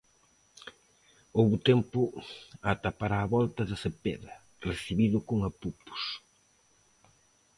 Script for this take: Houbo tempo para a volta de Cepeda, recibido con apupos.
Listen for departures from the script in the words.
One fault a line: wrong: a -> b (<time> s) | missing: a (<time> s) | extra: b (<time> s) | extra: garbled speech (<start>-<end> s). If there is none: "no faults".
extra: ata (2.7 s)